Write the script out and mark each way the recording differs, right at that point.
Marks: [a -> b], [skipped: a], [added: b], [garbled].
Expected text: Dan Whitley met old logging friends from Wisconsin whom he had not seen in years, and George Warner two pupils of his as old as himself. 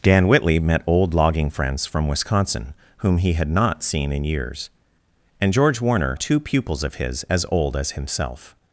Dan Whitley met old logging friends from Wisconsin whom he had not seen in years, and George Warner two pupils of his as old as himself.